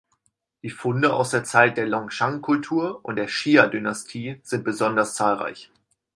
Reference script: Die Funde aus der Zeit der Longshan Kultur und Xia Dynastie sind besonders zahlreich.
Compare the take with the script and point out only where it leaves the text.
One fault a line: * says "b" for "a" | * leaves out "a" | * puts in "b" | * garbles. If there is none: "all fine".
* puts in "der"